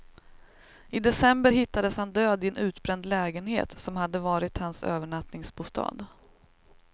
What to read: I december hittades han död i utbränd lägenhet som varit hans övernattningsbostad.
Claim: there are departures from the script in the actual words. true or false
true